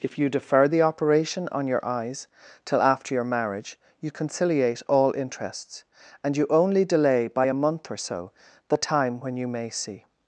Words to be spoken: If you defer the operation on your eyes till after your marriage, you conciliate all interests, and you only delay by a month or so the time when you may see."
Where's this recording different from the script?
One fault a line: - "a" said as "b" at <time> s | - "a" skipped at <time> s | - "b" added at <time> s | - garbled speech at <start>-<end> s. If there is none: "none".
none